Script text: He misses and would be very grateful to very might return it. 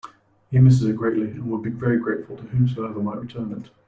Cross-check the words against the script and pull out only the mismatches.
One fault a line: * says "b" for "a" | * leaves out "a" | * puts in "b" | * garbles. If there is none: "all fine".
* puts in "it greatly"
* says "whomsoever" for "very"